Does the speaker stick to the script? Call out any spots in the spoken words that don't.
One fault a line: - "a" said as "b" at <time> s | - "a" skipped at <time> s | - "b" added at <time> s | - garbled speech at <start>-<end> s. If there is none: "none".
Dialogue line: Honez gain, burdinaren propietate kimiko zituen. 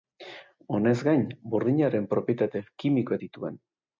none